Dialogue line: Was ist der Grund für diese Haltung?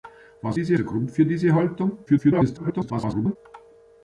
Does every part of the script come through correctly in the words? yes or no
no